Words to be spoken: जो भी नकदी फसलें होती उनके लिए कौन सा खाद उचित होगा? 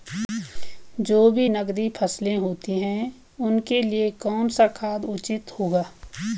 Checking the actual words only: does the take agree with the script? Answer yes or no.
no